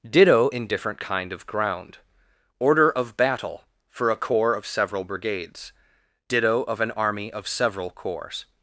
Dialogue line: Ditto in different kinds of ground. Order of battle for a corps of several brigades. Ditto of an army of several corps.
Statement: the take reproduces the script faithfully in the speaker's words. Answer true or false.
false